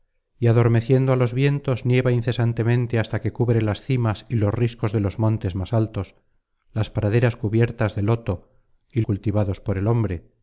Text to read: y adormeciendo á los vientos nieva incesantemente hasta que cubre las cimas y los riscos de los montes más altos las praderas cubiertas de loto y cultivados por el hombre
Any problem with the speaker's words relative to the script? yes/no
no